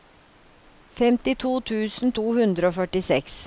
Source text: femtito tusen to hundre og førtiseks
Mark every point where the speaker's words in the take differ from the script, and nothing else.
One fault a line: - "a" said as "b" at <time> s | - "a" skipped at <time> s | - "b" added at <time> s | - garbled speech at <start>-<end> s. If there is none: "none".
none